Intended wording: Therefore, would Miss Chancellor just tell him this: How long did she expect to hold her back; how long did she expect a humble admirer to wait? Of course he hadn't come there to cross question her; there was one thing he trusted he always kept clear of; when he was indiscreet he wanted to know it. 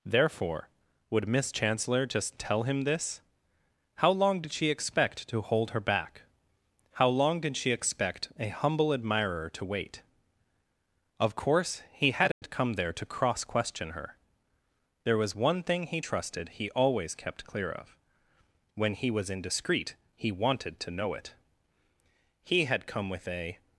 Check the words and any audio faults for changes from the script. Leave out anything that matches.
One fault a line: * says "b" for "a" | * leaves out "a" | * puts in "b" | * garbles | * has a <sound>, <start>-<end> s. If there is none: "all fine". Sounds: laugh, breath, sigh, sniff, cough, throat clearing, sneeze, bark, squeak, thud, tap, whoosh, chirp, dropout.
* has a dropout, 12.3-12.4 s
* puts in "He had come with a"